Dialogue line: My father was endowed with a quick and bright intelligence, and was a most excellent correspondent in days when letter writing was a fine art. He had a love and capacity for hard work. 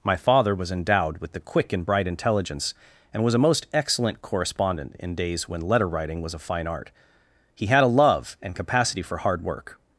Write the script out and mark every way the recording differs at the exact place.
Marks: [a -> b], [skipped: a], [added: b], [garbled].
My father was endowed with [a -> the] quick and bright intelligence, and was a most excellent correspondent in days when letter writing was a fine art. He had a love and capacity for hard work.